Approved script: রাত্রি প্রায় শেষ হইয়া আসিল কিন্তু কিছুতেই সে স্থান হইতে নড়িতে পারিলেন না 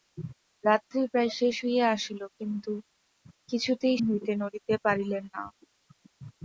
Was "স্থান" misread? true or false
true